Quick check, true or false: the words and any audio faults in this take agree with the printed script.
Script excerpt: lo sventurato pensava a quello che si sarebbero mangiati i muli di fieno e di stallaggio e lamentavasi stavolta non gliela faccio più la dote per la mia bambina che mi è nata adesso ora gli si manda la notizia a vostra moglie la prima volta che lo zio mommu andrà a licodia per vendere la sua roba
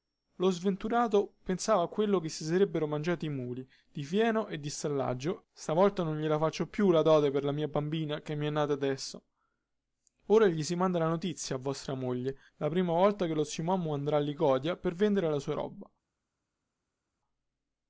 false